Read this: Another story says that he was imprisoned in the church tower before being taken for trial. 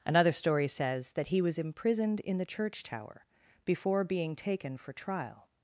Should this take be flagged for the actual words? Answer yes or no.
no